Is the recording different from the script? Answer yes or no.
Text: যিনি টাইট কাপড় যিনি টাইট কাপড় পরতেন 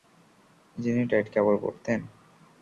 yes